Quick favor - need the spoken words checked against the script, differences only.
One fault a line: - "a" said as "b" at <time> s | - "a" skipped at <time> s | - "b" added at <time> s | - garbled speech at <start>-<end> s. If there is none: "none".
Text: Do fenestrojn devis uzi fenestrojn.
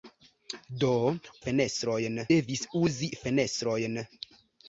none